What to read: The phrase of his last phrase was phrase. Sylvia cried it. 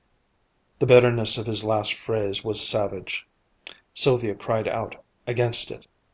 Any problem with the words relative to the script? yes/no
yes